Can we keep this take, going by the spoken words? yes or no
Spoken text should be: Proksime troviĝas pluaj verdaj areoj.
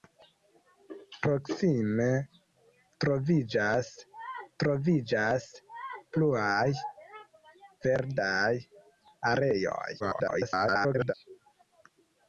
no